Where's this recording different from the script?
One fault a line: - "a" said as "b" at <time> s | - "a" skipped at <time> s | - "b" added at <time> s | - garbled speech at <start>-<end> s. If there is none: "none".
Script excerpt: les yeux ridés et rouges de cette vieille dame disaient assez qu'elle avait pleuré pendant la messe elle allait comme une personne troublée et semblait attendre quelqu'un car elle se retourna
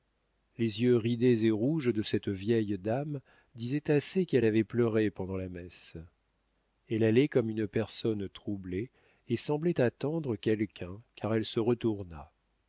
none